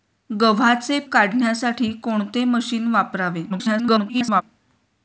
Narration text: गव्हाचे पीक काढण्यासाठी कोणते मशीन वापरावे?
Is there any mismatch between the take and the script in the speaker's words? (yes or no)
yes